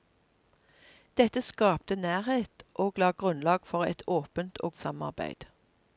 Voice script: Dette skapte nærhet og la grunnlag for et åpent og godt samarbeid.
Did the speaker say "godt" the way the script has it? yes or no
no